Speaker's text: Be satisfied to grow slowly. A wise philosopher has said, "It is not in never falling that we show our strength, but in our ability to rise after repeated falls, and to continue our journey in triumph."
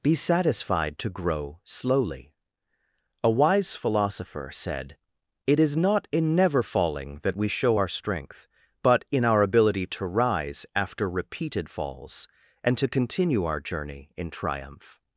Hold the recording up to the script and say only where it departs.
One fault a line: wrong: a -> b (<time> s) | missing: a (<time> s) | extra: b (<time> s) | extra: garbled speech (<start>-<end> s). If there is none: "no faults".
missing: has (4.5 s)